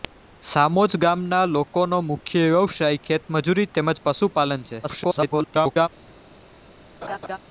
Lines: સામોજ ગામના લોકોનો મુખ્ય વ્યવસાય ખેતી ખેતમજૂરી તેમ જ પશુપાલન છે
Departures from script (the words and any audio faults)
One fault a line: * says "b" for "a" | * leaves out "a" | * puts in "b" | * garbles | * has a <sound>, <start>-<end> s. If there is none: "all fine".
* leaves out "ખેતી"
* garbles
* has a laugh, 7.0-7.4 s